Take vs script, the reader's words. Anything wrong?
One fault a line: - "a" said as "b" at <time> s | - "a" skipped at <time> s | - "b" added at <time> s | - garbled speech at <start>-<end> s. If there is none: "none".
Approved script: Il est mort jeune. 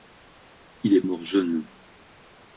none